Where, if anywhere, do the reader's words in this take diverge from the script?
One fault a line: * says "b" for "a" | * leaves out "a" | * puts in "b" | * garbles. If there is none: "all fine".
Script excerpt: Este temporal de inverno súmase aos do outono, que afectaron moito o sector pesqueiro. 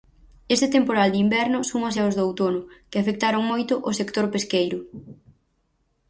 all fine